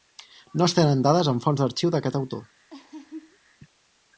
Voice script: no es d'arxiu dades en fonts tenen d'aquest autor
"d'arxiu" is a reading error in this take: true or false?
true